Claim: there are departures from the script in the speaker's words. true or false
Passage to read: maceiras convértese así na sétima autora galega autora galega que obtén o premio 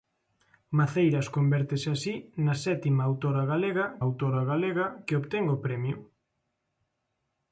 false